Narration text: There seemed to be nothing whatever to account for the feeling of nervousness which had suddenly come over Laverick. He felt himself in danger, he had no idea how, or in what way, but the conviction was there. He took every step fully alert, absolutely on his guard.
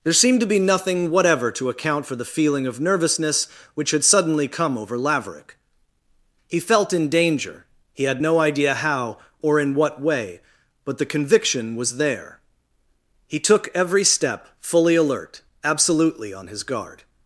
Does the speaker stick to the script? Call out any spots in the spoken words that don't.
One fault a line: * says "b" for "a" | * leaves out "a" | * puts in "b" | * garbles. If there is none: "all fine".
* leaves out "himself"